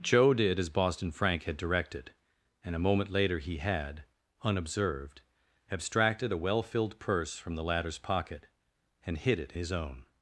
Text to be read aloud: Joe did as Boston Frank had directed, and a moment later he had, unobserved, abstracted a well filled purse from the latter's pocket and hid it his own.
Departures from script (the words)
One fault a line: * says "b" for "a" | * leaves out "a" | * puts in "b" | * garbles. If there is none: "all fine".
all fine